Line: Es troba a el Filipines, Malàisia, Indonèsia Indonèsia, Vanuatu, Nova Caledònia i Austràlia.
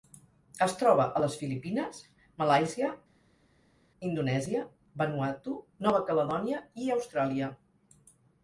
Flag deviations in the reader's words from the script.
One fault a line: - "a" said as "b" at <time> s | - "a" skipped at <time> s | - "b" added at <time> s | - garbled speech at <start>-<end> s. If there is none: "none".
- "el" said as "les" at 1.2 s
- "Indonèsia" skipped at 4.6 s